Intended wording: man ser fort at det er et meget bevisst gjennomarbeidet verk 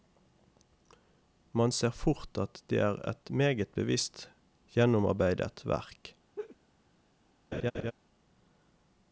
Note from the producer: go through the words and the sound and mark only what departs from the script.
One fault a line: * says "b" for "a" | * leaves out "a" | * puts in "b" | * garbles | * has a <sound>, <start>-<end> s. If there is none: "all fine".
* has a laugh, 6.4-6.6 s
* has a laugh, 7.5-7.9 s